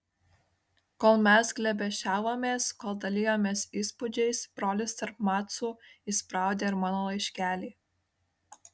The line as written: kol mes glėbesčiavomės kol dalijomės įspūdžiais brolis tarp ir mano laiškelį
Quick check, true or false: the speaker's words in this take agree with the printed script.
false